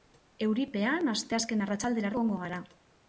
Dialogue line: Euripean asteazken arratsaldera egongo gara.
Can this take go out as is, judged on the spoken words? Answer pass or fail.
pass